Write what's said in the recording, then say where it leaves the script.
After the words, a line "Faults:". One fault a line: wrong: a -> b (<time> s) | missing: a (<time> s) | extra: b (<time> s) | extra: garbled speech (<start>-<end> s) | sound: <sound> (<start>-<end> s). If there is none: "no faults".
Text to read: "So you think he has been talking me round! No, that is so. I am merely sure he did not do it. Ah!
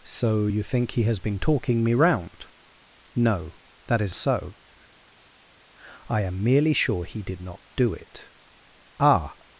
"So you think he has been talking me round! No, that is so. I am merely sure he did not do it. Ah!
Faults:
no faults